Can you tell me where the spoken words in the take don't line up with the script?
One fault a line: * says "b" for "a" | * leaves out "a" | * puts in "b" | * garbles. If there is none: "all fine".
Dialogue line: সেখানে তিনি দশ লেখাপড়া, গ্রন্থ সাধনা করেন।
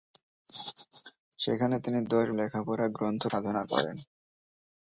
all fine